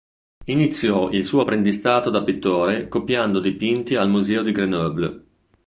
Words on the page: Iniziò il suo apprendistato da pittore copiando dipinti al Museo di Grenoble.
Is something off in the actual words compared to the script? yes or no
no